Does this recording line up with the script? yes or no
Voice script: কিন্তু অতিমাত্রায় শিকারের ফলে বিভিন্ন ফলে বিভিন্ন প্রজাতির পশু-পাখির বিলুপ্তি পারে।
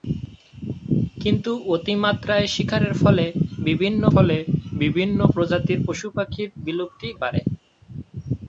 yes